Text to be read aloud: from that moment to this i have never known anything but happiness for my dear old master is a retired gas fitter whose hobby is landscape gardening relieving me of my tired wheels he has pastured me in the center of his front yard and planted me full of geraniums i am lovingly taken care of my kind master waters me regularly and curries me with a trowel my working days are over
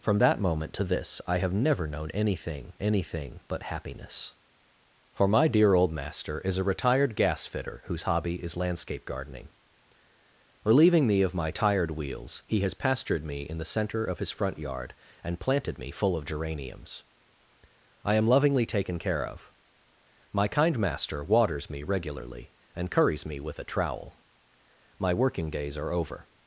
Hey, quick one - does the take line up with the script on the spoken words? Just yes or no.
no